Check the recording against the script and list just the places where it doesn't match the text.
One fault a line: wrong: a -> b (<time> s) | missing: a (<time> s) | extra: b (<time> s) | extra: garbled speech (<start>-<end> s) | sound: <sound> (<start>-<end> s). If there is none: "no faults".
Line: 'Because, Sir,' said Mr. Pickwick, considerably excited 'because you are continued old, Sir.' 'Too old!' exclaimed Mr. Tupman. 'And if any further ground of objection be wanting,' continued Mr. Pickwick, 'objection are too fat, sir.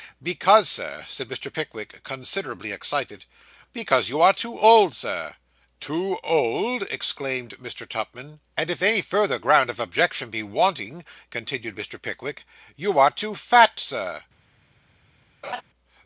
wrong: continued -> too (4.3 s)
wrong: objection -> you (12.8 s)
sound: laugh (15.4-15.6 s)